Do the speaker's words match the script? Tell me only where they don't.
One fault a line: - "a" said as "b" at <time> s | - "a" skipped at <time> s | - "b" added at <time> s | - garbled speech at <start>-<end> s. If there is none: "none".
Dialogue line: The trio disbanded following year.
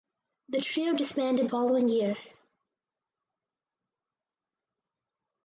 none